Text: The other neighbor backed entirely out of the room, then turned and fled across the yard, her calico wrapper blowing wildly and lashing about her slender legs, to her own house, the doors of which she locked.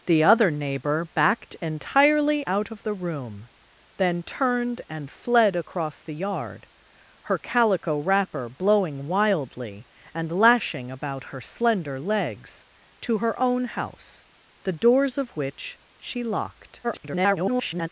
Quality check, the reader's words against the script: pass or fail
fail